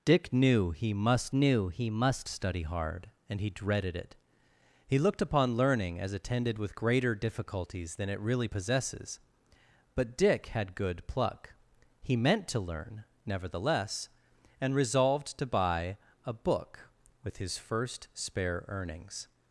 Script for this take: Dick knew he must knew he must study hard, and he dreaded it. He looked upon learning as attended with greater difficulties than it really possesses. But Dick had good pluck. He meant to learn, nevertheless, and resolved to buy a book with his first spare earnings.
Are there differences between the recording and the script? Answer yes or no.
no